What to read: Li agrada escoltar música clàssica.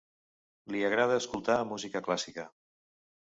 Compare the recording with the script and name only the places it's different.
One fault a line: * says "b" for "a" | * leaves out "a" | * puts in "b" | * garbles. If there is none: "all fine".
all fine